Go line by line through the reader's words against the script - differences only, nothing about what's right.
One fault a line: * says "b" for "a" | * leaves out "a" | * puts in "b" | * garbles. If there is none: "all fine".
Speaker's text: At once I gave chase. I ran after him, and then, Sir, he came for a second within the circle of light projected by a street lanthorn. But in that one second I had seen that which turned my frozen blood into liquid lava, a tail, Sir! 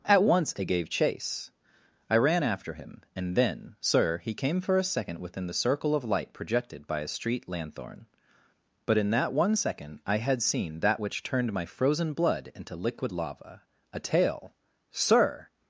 all fine